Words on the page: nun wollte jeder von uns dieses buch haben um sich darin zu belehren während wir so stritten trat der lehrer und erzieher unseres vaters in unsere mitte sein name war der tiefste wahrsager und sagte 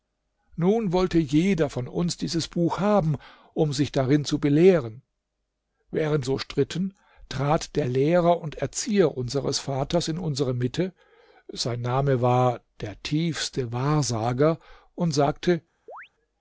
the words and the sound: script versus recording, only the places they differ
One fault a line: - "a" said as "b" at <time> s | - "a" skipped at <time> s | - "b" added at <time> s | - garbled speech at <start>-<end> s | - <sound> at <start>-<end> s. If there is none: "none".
- "wir" skipped at 6.3 s
- chirp at 15.9-16.1 s